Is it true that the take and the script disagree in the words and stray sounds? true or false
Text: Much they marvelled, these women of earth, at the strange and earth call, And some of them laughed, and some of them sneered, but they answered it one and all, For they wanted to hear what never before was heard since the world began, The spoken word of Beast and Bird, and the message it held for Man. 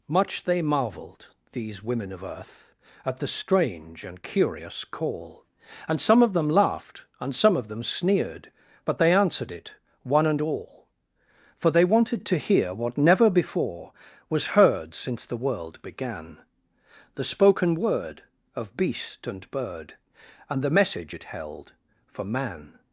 true